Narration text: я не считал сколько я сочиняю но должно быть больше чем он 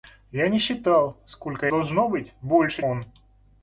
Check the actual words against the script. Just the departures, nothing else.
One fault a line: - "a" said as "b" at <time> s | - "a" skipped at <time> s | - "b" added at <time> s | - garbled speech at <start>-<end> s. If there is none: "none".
- "я сочиняю но" skipped at 1.7 s
- "чем" skipped at 2.8 s